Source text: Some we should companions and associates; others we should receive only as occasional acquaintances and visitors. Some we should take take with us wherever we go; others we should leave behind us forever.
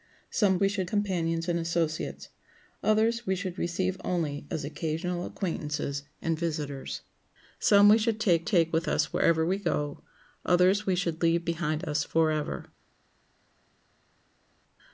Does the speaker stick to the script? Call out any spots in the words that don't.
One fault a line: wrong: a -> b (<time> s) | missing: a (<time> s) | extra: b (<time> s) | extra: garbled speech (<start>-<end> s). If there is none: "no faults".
no faults